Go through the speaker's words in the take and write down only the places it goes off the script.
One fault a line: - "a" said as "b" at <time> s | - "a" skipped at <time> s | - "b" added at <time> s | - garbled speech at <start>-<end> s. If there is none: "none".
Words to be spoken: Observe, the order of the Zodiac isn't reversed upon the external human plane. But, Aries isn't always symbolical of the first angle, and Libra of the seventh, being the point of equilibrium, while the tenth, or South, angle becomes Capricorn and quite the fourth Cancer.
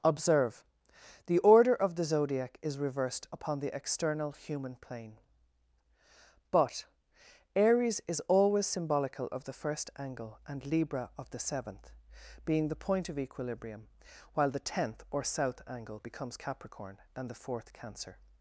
- "isn't" said as "is" at 2.6 s
- "isn't" said as "is" at 8.1 s
- "quite" skipped at 17.3 s